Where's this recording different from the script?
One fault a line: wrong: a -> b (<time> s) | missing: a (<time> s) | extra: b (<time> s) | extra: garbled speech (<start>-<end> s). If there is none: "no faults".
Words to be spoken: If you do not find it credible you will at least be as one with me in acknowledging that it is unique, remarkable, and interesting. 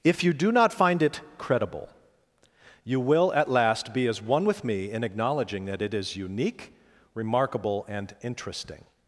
wrong: least -> last (3.5 s)